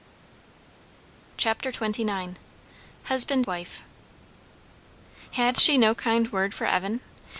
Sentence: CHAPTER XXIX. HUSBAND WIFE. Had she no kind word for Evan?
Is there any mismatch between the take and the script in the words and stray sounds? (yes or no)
no